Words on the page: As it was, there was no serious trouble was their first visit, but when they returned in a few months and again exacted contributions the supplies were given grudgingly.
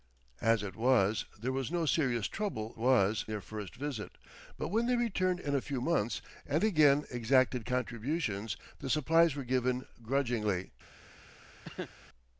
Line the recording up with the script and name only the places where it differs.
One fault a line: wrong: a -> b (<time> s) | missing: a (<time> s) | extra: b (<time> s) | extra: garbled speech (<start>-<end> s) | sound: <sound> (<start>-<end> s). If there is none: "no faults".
sound: cough (11.6-11.9 s)